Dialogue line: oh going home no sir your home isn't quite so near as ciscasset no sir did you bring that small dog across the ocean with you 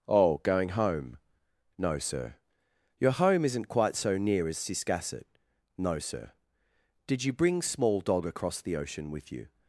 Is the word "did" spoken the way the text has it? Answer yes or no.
yes